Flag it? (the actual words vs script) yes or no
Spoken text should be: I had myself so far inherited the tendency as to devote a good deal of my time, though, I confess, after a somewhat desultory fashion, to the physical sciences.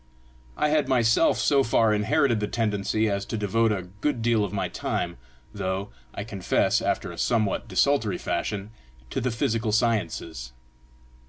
no